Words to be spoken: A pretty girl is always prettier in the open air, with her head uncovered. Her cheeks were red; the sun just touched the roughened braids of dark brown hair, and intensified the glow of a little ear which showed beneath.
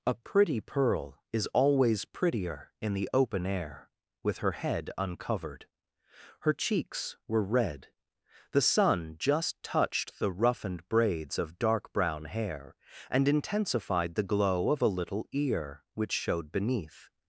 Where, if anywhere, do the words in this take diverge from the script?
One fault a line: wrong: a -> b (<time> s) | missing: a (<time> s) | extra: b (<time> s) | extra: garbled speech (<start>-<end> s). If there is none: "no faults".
wrong: girl -> pearl (0.6 s)